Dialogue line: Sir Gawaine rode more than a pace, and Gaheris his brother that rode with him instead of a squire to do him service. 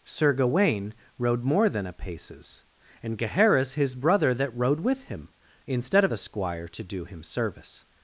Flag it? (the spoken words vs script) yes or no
yes